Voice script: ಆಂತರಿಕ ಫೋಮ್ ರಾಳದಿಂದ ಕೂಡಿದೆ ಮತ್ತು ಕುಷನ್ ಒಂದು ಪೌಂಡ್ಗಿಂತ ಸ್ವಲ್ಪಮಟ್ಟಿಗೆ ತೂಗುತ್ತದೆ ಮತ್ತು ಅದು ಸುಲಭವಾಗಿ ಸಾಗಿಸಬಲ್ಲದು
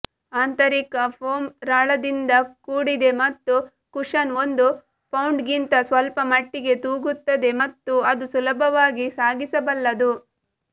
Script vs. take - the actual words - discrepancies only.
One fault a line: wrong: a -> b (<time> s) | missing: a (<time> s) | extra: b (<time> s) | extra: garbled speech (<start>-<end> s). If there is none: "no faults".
no faults